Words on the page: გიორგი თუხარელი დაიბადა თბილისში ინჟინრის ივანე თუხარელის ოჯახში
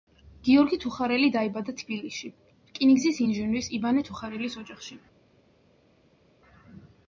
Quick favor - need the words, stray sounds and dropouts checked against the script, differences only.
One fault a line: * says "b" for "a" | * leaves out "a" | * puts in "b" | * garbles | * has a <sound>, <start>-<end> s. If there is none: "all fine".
* puts in "რკინიგზის"